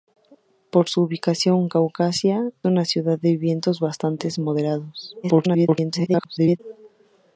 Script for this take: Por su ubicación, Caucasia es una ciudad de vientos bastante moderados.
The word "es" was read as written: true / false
false